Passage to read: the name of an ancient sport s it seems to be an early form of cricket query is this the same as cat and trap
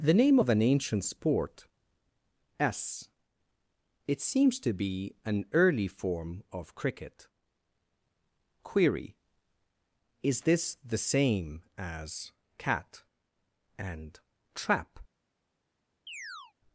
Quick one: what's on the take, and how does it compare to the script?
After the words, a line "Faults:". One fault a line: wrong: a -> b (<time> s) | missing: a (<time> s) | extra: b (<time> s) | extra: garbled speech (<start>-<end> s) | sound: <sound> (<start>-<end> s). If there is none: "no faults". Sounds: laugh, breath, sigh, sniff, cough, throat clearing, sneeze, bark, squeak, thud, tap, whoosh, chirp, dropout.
the name of an ancient sport s it seems to be an early form of cricket query is this the same as cat and trap
Faults:
sound: chirp (16.1-16.5 s)